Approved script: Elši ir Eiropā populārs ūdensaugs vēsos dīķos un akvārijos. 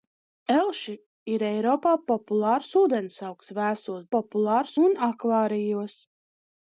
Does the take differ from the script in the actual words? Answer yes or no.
yes